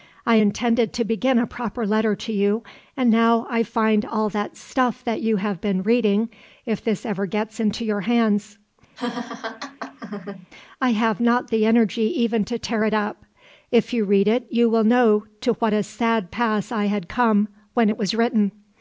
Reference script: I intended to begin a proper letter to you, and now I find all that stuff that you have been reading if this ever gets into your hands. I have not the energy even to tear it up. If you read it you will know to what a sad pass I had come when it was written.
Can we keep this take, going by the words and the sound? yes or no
no